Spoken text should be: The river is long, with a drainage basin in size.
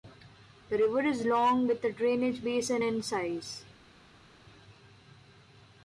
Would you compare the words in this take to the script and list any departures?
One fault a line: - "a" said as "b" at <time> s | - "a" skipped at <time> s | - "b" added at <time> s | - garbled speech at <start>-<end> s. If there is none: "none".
none